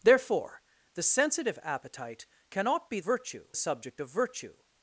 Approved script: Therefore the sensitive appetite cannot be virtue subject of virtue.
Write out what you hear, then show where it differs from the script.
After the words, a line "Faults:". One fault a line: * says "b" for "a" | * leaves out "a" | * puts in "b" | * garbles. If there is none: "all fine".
Therefore the sensitive appetite cannot be virtue subject of virtue.
Faults:
all fine